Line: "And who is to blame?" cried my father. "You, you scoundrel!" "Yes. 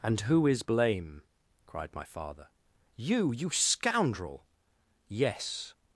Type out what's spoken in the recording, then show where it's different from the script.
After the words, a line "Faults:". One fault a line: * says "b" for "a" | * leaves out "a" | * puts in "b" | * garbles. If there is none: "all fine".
"And who is blame?" cried my father. "You, you scoundrel!" "Yes.
Faults:
* leaves out "to"